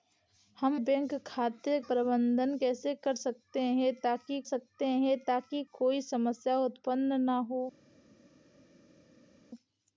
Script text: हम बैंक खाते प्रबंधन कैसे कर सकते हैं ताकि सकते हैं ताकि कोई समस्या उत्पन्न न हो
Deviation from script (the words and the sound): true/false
false